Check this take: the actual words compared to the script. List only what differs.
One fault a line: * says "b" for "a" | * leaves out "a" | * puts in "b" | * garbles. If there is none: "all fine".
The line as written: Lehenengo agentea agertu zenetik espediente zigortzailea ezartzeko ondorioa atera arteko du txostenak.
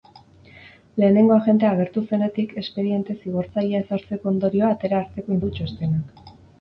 all fine